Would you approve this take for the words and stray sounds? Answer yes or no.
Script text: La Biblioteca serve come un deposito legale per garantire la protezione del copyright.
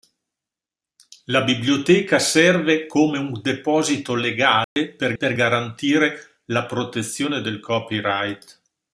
no